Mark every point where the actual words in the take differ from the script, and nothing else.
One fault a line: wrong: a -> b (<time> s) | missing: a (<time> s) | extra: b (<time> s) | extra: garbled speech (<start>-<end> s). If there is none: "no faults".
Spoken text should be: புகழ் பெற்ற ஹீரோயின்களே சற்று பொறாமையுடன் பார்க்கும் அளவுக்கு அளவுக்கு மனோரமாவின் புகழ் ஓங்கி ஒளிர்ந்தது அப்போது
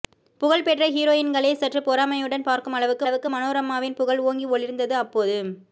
no faults